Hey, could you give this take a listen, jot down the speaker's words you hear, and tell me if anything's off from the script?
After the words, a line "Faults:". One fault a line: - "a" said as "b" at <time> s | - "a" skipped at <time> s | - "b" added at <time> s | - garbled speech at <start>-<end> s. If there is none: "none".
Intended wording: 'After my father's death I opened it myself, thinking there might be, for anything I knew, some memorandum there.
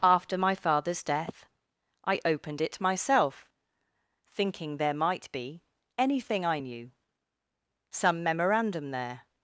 'After my father's death I opened it myself, thinking there might be, anything I knew, some memorandum there.
Faults:
- "for" skipped at 5.6 s